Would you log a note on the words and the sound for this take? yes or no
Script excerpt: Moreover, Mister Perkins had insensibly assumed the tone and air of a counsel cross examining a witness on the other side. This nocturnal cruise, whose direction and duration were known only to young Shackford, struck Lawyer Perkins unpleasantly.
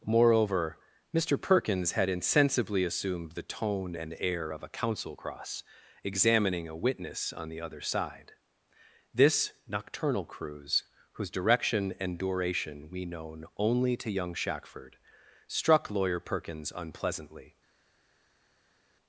yes